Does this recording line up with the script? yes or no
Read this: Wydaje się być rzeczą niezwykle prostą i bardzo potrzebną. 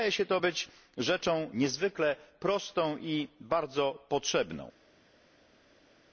no